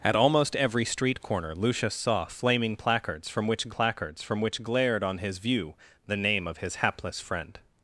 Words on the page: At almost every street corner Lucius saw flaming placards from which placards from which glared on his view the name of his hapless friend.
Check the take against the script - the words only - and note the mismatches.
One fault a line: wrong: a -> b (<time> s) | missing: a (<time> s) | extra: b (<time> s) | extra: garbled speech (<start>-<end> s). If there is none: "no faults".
no faults